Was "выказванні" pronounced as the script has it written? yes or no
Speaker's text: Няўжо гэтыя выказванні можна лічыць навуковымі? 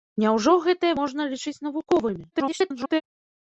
no